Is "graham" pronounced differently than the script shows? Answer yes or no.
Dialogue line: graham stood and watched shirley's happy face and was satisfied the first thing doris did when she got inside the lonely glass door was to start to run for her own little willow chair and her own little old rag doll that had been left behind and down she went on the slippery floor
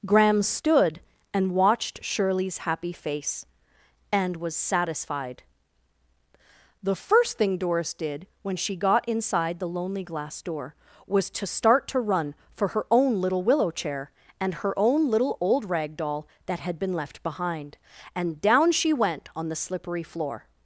no